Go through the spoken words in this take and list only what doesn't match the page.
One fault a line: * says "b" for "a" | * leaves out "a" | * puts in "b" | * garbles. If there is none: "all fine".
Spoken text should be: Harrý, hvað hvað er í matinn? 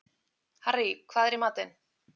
* leaves out "hvað"